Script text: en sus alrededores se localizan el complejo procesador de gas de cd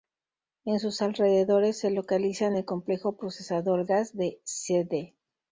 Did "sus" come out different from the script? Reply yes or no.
no